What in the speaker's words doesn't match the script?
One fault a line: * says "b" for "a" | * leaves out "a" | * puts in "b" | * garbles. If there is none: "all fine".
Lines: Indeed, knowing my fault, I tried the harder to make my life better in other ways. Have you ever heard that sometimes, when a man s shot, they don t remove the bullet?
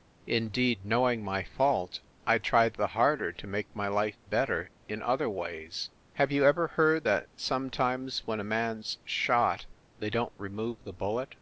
all fine